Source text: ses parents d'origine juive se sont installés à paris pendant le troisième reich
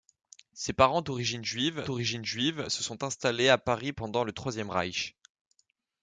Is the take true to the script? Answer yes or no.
no